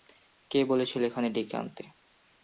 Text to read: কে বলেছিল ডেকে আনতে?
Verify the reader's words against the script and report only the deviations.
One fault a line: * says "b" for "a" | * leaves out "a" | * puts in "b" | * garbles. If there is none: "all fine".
* puts in "এখানে"